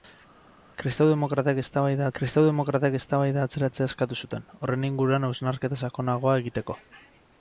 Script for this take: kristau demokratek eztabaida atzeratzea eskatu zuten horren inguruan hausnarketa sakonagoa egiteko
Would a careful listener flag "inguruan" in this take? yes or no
no